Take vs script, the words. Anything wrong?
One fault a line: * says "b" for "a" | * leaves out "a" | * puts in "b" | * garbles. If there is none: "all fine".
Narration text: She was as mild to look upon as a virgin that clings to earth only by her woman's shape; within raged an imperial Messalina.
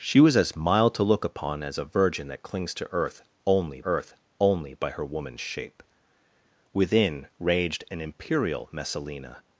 * puts in "earth only"